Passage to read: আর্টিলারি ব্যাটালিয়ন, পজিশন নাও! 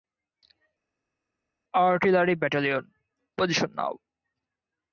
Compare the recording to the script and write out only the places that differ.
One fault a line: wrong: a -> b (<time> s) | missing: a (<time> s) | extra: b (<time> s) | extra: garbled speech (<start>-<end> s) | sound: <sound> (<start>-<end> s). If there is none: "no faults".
no faults